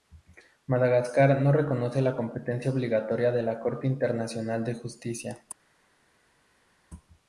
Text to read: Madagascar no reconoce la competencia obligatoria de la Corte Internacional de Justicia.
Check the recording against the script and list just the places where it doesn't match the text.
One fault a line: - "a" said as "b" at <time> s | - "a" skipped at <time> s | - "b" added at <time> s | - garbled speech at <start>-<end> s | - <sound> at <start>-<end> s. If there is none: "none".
none